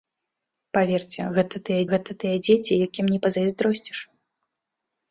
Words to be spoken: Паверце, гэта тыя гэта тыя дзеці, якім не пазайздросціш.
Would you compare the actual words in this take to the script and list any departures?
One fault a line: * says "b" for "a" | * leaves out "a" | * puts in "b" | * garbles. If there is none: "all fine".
all fine